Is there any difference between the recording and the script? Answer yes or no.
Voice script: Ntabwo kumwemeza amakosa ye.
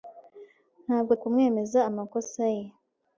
no